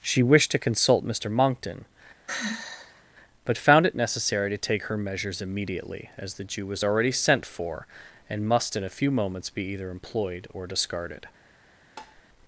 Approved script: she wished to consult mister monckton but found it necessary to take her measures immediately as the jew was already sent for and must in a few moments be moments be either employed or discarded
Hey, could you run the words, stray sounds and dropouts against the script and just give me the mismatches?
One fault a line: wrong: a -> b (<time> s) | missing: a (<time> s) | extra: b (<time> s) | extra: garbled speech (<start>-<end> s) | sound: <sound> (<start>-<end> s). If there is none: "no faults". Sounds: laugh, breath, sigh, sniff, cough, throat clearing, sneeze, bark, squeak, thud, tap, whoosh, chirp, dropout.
sound: sigh (2.3-3.0 s)
missing: moments be (9.6 s)
sound: tap (12.0-12.2 s)